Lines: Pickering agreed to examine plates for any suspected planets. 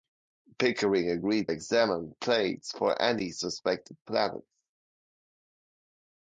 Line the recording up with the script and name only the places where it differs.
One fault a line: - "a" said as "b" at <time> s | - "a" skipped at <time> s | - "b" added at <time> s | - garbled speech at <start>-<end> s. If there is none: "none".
- "to" skipped at 1.5 s